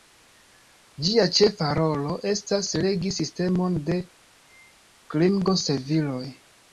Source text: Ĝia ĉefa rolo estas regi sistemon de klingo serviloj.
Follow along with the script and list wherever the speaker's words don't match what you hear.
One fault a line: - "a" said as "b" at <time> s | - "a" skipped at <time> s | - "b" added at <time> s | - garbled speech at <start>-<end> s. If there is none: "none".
none